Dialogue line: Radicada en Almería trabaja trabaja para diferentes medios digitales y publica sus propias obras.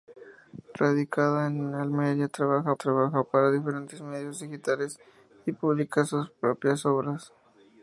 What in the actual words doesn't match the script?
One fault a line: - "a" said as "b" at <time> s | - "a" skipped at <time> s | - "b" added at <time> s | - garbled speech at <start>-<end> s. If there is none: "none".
none